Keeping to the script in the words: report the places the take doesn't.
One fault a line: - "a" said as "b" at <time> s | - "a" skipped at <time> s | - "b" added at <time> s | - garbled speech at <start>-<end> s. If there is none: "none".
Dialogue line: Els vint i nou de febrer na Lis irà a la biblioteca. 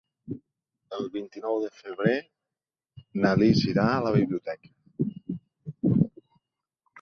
- "Els" said as "El" at 1.0 s